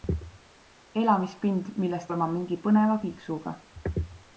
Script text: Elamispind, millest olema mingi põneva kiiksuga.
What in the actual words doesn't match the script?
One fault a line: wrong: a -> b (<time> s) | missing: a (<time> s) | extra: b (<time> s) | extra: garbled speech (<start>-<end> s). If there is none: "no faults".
no faults